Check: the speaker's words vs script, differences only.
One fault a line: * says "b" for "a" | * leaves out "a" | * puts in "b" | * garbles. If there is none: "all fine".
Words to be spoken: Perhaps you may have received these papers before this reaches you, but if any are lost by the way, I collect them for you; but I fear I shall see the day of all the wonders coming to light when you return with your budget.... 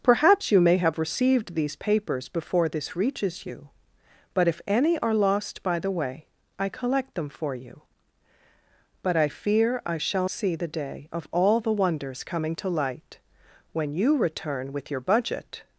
all fine